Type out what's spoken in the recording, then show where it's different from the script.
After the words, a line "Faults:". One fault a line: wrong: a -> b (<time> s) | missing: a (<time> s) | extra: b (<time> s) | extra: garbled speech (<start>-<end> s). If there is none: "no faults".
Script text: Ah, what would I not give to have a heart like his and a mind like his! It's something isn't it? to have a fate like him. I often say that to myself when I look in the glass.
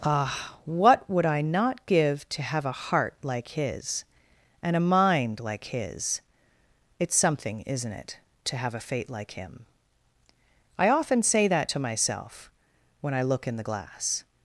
Ah, what would I not give to have a heart like his and a mind like his! It's something isn't it? to have a fate like him. I often say that to myself when I look in the glass.
Faults:
no faults